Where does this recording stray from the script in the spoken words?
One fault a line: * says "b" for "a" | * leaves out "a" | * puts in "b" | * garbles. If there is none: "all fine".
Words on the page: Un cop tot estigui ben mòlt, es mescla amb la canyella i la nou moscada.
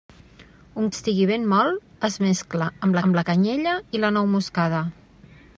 * leaves out "cop tot"
* puts in "amb"